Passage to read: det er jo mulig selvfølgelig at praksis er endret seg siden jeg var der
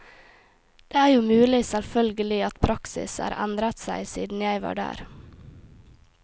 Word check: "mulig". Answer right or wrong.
right